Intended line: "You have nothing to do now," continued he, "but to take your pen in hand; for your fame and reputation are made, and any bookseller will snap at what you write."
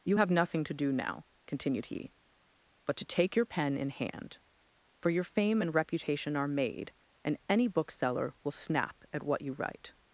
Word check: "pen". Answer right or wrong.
right